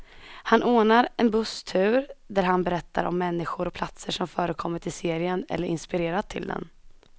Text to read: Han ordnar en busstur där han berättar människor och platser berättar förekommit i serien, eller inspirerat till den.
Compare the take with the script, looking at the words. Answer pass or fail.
fail